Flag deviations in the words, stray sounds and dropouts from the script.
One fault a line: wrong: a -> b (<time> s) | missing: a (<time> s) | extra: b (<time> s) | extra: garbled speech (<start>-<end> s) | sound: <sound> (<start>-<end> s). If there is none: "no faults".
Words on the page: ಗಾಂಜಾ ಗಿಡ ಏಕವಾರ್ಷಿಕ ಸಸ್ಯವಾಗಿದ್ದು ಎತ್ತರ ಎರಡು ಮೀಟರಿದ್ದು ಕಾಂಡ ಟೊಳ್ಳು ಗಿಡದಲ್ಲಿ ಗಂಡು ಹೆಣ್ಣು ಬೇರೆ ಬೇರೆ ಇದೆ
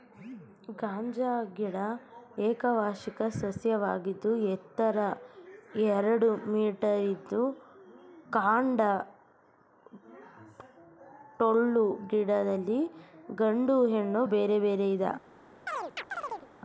sound: chirp (15.7-16.5 s)